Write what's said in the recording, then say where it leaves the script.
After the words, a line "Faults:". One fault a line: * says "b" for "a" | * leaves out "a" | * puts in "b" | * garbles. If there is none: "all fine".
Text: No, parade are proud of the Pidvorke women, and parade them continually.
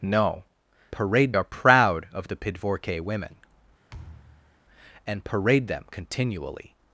No, parade are proud of the Pidvorke women, and parade them continually.
Faults:
all fine